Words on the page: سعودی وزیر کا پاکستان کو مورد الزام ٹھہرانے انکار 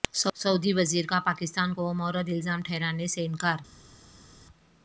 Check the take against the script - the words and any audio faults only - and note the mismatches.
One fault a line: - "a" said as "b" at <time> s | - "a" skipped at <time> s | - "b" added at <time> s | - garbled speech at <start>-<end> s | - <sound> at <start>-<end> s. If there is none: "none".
- "سے" added at 3.1 s